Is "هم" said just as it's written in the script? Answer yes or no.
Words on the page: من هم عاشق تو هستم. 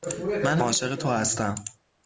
no